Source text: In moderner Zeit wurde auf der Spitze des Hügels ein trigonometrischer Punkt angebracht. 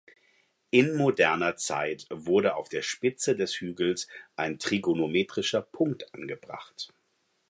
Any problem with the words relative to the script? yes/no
no